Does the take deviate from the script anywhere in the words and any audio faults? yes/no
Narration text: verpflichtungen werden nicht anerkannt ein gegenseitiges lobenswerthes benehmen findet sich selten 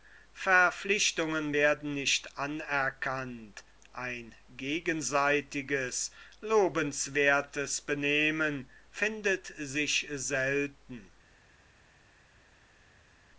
no